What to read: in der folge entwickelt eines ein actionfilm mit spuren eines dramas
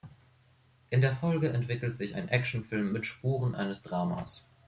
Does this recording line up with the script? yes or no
no